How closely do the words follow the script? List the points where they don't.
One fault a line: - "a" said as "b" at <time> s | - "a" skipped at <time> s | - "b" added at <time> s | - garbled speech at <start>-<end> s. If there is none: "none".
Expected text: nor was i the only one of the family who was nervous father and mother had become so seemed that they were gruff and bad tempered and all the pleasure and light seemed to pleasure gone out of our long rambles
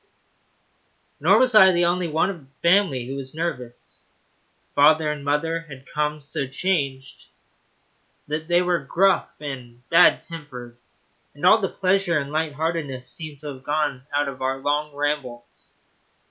- "seemed" said as "changed" at 6.5 s
- "heartedness" added at 12.5 s
- "pleasure" said as "have" at 13.5 s